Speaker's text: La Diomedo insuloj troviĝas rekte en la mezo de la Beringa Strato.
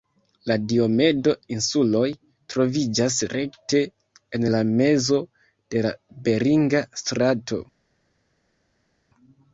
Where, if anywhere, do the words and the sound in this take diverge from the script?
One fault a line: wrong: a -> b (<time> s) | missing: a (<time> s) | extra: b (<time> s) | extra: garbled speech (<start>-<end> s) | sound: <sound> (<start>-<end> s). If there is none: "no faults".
no faults